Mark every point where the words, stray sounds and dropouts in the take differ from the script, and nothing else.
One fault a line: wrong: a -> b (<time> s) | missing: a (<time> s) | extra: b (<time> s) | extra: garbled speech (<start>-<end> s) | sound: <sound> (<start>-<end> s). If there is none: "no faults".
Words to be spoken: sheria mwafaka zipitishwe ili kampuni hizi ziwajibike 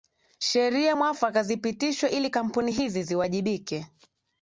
no faults